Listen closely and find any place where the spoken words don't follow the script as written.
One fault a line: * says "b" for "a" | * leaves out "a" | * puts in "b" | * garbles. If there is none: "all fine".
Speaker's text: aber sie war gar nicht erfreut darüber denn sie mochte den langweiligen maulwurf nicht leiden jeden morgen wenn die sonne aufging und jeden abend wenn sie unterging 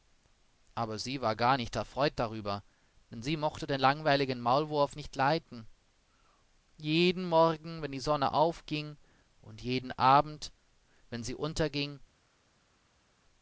all fine